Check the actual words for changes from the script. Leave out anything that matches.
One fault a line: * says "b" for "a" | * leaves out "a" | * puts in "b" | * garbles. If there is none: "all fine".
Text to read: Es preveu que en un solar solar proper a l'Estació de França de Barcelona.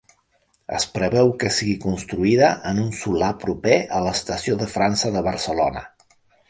* puts in "sigui construïda"
* leaves out "solar"